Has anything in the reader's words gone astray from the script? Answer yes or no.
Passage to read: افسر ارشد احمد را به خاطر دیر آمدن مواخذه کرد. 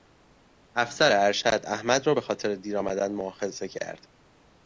no